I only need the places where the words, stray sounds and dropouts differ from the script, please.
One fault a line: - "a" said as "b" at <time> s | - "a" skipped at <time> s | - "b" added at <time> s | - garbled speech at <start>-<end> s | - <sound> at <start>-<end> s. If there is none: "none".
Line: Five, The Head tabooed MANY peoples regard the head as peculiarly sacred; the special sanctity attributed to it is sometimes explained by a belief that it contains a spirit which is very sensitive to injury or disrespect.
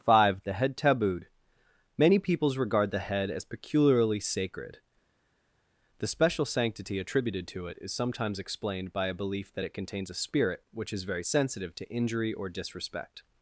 none